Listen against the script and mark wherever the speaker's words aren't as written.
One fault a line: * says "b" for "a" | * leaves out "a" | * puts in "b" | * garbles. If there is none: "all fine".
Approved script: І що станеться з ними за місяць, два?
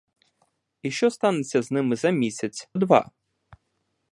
all fine